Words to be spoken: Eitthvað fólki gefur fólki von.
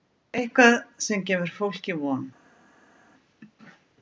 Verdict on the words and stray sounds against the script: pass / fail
fail